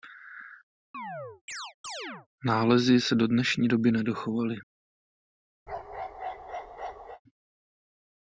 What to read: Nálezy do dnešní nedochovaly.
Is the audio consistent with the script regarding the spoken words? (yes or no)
no